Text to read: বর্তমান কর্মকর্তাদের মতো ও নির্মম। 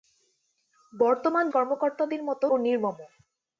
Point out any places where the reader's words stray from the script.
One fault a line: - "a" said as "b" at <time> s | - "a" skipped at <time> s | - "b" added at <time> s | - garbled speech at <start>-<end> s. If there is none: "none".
none